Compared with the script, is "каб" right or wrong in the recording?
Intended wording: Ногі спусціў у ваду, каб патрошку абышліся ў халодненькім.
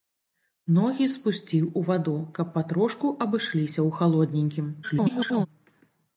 right